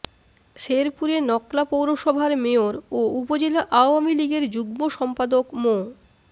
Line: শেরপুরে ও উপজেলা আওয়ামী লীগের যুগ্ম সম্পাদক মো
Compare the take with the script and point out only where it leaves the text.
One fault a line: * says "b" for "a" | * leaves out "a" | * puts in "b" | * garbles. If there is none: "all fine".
* puts in "নকলা পৌরসভার মেয়র"